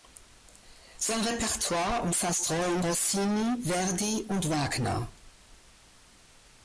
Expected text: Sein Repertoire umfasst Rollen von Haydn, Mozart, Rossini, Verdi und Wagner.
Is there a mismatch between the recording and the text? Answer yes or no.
yes